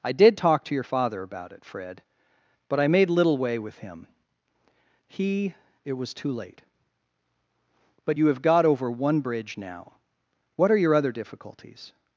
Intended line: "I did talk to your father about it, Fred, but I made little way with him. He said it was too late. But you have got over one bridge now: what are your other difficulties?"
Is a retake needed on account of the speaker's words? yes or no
yes